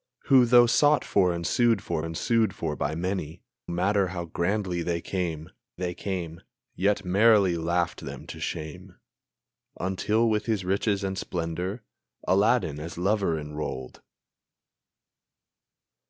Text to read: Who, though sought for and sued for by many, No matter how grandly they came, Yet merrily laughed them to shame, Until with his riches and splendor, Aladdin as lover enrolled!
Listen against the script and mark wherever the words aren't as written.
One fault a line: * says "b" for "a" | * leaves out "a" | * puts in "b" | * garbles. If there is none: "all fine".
* puts in "and sued for"
* leaves out "No"
* puts in "they came"